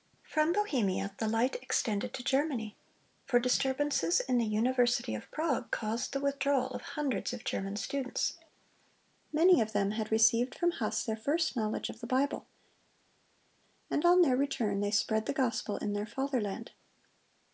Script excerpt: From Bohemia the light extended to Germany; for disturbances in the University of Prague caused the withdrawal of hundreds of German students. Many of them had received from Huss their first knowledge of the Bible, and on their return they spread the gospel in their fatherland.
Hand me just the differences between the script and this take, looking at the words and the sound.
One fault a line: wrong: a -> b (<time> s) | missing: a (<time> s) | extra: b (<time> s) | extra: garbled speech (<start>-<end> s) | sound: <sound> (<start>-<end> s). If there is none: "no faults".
no faults